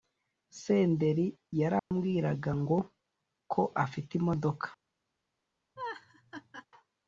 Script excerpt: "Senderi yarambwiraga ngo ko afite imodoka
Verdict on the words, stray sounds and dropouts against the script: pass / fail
fail